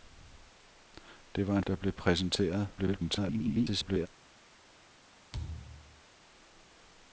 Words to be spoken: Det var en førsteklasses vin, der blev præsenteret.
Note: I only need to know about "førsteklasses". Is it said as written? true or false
false